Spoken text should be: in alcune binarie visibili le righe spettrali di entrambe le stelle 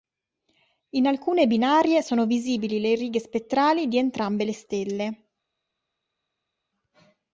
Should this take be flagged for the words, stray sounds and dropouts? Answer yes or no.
yes